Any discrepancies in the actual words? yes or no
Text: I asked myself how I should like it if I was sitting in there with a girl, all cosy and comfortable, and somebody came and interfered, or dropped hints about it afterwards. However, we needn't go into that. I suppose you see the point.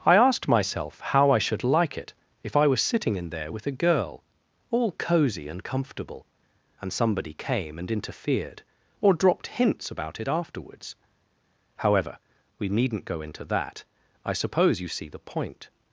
no